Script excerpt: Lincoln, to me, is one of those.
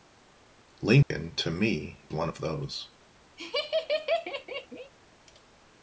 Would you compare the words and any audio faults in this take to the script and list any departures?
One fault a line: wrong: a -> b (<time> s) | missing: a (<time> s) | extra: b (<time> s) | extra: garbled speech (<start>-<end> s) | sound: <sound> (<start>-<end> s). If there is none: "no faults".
sound: dropout (1.0-1.1 s)
missing: is (2.1 s)
sound: laugh (3.4-4.9 s)